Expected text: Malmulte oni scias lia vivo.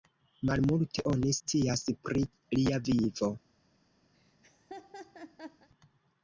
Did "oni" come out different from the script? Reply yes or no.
no